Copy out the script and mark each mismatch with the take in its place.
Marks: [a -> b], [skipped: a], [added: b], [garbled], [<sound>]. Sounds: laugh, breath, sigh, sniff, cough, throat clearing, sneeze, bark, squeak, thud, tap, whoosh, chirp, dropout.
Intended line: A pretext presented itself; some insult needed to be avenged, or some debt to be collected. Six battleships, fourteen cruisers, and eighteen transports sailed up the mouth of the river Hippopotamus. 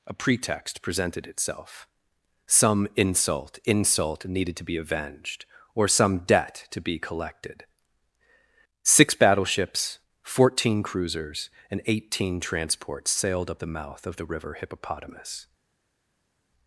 A pretext presented itself; some insult [added: insult] needed to be avenged, or some debt to be collected. Six battleships, fourteen cruisers, and eighteen transports sailed up the mouth of the river Hippopotamus.